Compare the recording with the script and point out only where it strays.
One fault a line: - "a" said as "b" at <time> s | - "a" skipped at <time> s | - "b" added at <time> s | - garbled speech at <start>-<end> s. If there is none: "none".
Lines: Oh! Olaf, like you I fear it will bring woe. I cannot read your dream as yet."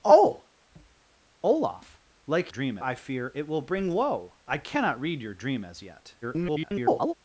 - "you" said as "dream" at 2.5 s
- garbled speech at 6.2-7.1 s